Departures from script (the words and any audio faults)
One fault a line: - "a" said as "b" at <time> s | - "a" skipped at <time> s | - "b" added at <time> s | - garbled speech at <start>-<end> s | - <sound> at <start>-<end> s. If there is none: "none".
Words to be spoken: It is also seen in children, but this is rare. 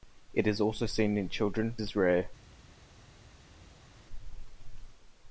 - "but this" skipped at 1.8 s